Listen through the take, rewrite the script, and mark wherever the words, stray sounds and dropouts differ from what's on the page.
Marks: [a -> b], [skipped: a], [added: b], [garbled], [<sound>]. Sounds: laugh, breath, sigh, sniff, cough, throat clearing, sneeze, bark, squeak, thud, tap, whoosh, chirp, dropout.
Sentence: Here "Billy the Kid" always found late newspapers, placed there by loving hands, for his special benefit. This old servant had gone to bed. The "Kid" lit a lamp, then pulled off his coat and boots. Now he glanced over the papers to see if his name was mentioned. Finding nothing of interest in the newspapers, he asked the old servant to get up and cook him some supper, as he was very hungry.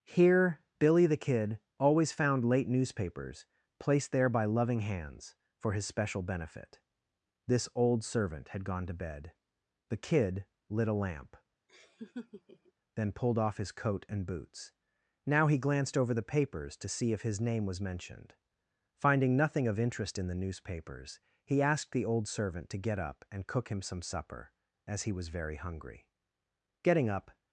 Here "Billy the Kid" always found late newspapers, placed there by loving hands, for his special benefit. This old servant had gone to bed. The "Kid" lit a lamp, [laugh] then pulled off his coat and boots. Now he glanced over the papers to see if his name was mentioned. Finding nothing of interest in the newspapers, he asked the old servant to get up and cook him some supper, as he was very hungry. [added: Getting up]